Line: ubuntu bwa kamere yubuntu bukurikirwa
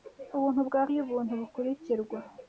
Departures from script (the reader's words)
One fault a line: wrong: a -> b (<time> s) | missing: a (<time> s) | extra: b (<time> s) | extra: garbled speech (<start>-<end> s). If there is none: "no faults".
missing: kamere (0.8 s)